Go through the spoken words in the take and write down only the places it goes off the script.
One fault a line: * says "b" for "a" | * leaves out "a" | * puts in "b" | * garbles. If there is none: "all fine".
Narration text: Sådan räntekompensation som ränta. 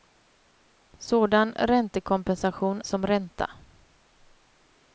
all fine